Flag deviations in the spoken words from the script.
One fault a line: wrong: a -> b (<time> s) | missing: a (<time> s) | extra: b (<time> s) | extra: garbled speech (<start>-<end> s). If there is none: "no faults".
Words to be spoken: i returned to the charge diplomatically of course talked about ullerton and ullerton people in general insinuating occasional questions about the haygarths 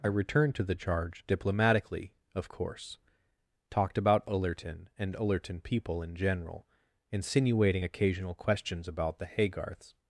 no faults